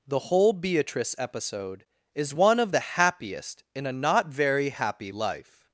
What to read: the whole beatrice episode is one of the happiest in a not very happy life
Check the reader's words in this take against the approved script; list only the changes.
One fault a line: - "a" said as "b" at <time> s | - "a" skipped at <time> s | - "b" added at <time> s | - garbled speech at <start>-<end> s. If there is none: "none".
none